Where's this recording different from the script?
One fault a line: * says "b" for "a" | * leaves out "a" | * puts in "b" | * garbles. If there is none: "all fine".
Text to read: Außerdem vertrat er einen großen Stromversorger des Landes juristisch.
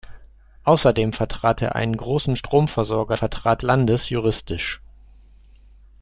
* says "vertrat" for "des"